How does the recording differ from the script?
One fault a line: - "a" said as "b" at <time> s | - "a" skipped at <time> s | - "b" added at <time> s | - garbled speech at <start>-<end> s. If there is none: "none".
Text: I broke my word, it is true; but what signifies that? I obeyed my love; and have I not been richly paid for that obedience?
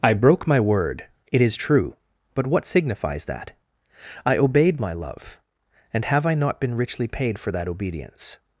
none